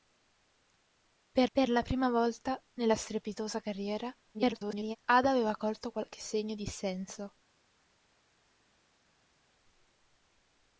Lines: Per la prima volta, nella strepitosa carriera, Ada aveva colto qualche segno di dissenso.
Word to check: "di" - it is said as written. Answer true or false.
false